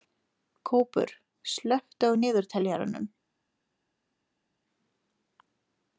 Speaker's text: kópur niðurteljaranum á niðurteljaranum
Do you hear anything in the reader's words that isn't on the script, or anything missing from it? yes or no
yes